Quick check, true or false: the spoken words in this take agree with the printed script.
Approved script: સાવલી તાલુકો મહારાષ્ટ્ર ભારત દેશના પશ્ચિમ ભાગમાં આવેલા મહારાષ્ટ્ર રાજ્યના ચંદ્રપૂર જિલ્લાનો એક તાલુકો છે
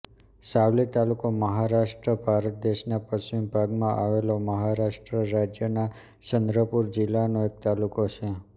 true